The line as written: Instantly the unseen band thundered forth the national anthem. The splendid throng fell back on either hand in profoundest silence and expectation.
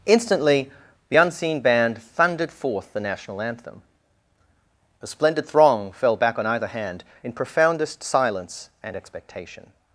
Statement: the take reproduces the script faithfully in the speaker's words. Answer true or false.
false